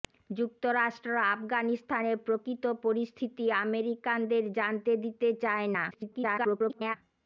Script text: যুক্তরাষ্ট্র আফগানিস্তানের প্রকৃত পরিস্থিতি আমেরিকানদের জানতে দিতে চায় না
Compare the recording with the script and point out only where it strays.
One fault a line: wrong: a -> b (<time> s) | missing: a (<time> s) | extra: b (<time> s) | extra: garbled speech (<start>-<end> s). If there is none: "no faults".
extra: garbled speech (5.9-7.0 s)